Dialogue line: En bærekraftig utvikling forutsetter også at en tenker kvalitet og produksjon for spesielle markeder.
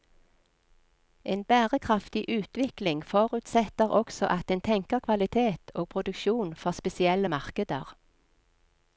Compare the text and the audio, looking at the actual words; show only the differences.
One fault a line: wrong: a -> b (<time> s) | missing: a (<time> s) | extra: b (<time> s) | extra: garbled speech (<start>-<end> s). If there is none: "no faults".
no faults